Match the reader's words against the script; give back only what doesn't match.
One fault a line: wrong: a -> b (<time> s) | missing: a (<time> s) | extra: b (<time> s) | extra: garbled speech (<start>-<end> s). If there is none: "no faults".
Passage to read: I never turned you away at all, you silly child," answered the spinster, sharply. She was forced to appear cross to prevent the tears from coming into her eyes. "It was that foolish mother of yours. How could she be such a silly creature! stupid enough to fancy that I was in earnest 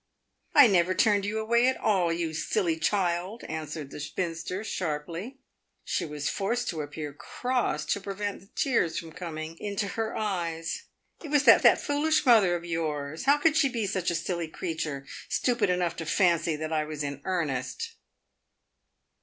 extra: that (11.6 s)